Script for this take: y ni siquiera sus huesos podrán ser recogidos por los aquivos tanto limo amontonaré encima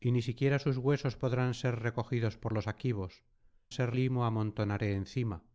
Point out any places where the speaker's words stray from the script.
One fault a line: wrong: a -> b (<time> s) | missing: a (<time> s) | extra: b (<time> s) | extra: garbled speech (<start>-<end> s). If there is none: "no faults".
wrong: tanto -> ser (3.7 s)